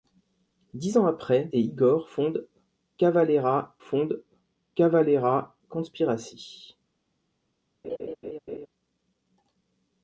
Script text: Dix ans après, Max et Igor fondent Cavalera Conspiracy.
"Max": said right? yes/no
no